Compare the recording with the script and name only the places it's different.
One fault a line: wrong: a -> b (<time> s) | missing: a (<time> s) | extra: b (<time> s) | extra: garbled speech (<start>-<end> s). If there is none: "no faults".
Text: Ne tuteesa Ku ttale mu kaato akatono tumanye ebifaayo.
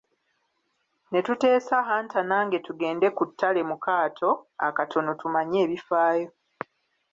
extra: Hunter nange tugende (1.9 s)